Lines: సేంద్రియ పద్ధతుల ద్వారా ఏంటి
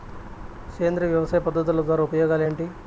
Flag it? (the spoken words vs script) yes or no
yes